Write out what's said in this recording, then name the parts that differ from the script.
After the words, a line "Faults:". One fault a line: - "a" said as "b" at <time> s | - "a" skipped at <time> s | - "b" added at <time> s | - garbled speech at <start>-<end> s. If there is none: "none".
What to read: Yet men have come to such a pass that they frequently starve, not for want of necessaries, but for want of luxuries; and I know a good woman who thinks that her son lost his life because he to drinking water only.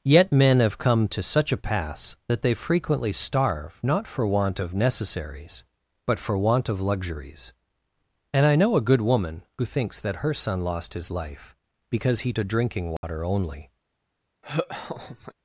Yet men have come to such a pass that they frequently starve, not for want of necessaries, but for want of luxuries; and I know a good woman who thinks that her son lost his life because he to drinking water only.
Faults:
none